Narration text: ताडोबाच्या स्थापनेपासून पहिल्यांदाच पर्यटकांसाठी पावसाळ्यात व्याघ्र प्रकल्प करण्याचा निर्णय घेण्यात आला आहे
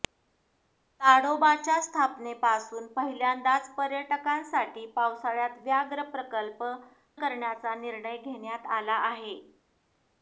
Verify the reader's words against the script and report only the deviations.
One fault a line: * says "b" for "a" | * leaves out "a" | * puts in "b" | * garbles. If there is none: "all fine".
all fine